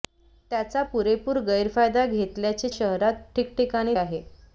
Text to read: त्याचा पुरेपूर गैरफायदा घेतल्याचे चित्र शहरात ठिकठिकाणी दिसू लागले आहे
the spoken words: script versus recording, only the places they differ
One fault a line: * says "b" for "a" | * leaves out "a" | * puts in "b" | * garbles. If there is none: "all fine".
* leaves out "चित्र"
* leaves out "दिसू लागले"